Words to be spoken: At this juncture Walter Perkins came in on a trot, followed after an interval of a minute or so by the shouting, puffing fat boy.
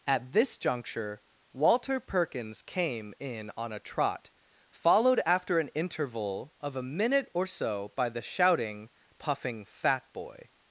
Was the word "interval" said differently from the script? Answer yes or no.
no